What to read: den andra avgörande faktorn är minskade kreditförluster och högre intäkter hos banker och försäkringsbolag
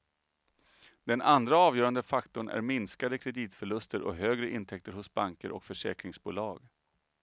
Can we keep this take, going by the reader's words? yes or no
yes